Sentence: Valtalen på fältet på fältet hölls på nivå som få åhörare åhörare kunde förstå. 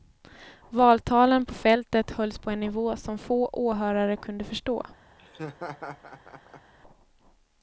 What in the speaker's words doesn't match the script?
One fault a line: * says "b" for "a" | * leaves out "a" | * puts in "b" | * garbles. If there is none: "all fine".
* leaves out "på fältet"
* puts in "en"
* leaves out "åhörare"